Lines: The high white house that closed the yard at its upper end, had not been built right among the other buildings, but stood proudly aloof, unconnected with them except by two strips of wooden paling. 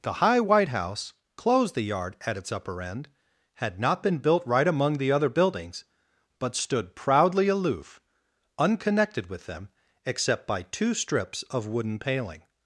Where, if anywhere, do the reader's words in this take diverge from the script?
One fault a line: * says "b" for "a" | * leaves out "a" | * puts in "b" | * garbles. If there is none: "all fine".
* leaves out "that"